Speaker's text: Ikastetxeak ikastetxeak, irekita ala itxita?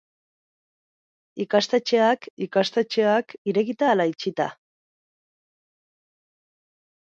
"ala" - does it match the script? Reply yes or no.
yes